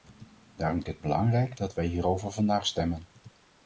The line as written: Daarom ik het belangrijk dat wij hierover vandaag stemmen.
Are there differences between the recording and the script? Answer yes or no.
no